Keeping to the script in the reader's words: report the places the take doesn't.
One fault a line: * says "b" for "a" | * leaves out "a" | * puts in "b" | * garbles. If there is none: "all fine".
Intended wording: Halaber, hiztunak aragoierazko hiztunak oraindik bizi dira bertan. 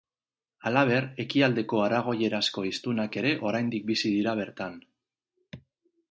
* says "ekialdeko" for "hiztunak"
* puts in "ere"